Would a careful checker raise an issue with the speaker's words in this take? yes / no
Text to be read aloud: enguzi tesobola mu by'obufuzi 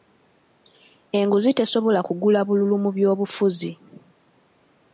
yes